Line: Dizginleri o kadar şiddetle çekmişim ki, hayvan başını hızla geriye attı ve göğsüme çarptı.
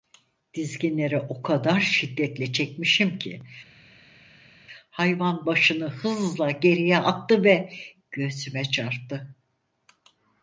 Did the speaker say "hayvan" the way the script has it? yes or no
yes